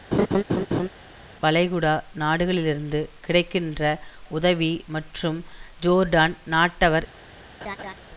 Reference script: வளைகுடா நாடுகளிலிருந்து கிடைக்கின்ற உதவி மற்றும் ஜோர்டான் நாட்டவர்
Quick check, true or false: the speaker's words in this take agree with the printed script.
true